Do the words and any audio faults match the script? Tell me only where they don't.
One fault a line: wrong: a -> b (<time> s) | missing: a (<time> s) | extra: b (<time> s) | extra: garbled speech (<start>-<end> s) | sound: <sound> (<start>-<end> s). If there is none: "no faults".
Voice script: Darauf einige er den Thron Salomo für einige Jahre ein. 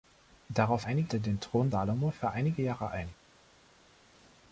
no faults